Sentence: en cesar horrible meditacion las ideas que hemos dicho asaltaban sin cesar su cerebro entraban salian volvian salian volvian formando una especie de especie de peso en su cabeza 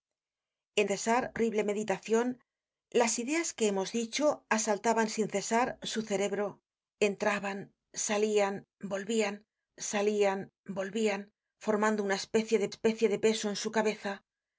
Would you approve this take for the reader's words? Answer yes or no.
yes